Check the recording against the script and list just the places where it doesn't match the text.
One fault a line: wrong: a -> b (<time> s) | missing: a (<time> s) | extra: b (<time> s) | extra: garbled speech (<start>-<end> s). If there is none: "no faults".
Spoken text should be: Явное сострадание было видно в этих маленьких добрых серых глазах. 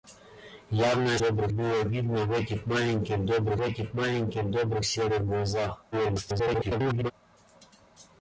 wrong: сострадание -> добрых (1.2 s)
extra: этих маленьких добрых (3.6 s)
extra: garbled speech (5.9-7.1 s)